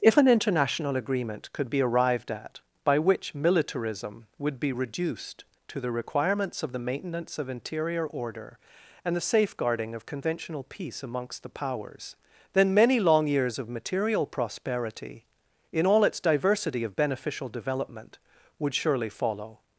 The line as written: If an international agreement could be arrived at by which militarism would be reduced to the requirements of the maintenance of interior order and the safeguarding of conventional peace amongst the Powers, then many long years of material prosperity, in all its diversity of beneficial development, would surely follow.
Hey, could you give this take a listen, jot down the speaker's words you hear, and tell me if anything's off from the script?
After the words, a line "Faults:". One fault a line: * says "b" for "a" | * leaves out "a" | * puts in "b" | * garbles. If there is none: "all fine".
If an international agreement could be arrived at by which militarism would be reduced to the requirements of the maintenance of interior order and the safeguarding of conventional peace amongst the Powers, then many long years of material prosperity, in all its diversity of beneficial development, would surely follow.
Faults:
all fine